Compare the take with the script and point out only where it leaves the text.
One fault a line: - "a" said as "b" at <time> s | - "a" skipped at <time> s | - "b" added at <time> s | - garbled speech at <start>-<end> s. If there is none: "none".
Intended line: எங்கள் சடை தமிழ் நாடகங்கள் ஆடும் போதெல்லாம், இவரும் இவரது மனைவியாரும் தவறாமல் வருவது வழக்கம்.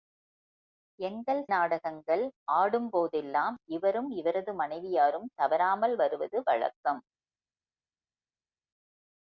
- "சடை தமிழ்" skipped at 1.4 s